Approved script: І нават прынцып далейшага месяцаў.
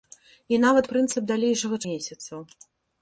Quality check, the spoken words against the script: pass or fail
pass